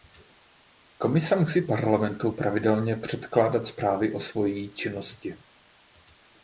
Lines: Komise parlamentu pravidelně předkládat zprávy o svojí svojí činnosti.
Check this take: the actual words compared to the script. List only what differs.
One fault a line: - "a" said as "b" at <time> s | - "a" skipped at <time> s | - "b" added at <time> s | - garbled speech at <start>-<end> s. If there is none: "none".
- "musí" added at 1.4 s
- "svojí" skipped at 4.7 s